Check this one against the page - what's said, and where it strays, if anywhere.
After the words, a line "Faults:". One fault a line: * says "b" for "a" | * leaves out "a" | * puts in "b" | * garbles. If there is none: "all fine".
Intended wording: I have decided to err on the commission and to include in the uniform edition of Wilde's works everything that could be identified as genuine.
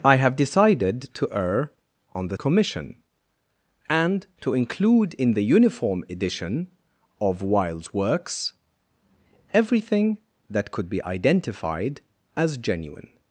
I have decided to err on the commission and to include in the uniform edition of Wilde's works everything that could be identified as genuine.
Faults:
all fine